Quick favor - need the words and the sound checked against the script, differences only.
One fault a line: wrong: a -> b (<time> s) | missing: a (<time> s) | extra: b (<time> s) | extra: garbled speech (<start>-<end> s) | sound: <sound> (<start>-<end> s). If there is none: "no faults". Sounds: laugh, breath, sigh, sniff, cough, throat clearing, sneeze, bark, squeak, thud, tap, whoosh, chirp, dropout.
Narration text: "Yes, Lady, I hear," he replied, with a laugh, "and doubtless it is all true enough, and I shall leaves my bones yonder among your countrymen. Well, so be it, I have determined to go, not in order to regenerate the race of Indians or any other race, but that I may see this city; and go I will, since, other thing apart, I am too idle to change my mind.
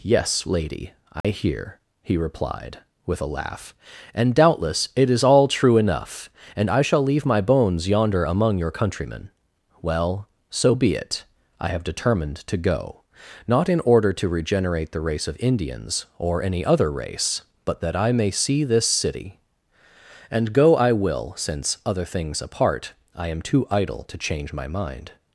sound: dropout (1.2-1.2 s)
wrong: leaves -> leave (7.0 s)
wrong: thing -> things (22.0 s)